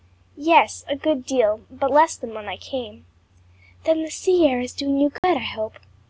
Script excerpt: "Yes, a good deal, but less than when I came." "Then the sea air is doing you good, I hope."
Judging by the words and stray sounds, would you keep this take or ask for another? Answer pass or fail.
fail